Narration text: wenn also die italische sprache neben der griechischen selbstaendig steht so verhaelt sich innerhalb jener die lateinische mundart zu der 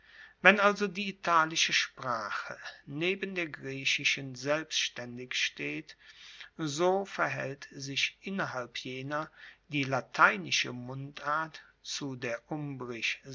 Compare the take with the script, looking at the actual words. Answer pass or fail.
pass